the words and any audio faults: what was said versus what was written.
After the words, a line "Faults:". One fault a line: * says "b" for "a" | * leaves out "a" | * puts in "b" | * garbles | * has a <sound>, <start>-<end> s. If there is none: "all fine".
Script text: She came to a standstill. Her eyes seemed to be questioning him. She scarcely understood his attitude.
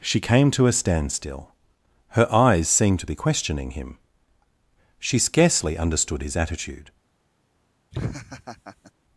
She came to a standstill. Her eyes seemed to be questioning him. She scarcely understood his attitude.
Faults:
* has a laugh, 7.9-8.9 s